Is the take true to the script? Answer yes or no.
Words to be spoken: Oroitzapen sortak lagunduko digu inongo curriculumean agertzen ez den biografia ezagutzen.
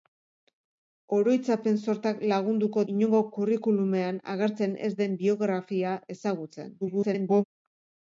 no